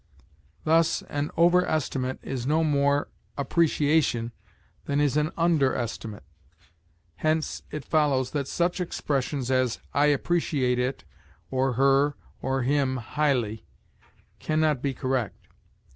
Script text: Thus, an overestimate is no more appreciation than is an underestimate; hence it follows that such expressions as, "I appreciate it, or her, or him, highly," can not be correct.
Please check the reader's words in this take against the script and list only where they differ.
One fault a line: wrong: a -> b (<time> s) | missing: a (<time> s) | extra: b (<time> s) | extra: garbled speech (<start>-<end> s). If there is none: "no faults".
no faults